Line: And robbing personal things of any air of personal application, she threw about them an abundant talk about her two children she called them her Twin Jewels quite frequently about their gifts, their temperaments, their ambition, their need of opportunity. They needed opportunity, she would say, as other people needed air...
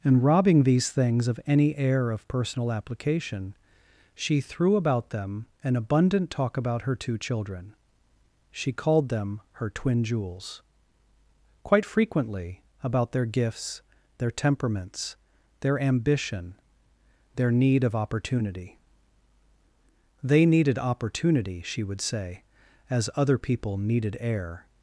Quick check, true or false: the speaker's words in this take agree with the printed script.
false